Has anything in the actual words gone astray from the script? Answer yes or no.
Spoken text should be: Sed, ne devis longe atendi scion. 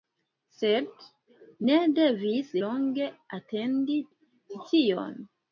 no